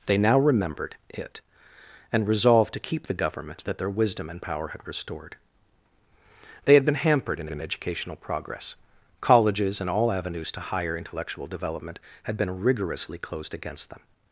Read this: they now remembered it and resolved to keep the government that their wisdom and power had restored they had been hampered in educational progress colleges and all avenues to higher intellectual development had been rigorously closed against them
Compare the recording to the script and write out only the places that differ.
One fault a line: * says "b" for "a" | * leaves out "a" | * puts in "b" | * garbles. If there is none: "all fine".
* puts in "in"